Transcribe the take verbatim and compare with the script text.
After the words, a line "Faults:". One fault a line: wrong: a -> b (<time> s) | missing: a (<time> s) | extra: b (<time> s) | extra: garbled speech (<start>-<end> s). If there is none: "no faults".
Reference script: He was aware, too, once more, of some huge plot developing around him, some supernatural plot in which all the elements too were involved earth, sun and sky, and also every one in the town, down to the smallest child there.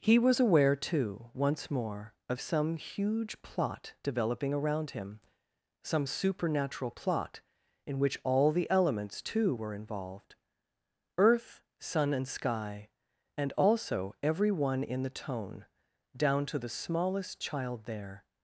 He was aware, too, once more, of some huge plot developing around him, some supernatural plot in which all the elements too were involved earth, sun and sky, and also every one in the tone, down to the smallest child there.
Faults:
wrong: town -> tone (15.1 s)